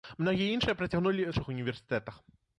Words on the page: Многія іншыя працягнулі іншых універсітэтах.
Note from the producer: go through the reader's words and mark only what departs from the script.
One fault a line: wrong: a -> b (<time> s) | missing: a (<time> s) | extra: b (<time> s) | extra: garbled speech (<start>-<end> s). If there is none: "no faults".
no faults